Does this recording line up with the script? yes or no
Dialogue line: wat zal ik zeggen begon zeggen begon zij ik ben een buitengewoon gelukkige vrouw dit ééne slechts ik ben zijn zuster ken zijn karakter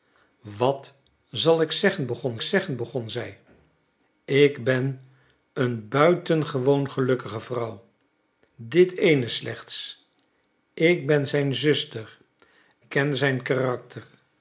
yes